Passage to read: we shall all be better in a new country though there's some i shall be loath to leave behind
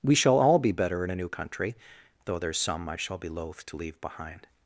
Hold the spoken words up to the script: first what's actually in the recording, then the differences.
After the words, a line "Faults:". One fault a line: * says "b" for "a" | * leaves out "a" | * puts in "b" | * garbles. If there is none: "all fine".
we shall all be better in a new country though there's some i shall be loath to leave behind
Faults:
all fine